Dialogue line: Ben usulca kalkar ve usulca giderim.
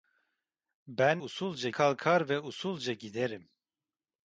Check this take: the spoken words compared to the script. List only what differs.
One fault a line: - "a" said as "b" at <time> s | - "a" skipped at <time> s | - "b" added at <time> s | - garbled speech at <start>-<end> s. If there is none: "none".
none